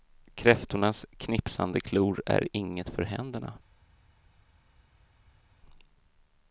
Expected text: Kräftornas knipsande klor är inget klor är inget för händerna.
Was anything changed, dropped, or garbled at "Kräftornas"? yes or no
no